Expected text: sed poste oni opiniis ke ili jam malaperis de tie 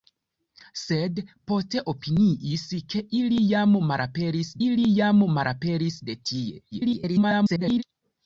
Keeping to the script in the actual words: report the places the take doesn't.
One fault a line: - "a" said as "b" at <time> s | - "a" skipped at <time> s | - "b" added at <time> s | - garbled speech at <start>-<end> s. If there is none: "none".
- "oni" skipped at 1.8 s
- "ili jam malaperis" added at 4.7 s
- garbled speech at 6.7-7.8 s